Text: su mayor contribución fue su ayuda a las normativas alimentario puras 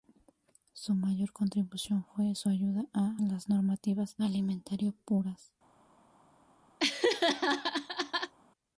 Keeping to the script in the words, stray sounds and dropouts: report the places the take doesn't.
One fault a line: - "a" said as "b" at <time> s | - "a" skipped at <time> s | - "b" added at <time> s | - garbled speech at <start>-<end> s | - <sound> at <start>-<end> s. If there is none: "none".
- laugh at 6.8-8.3 s